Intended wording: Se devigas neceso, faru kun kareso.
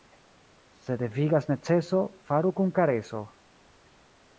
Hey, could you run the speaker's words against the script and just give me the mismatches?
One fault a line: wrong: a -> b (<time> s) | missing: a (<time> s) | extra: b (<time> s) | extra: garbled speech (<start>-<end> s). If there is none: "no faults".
no faults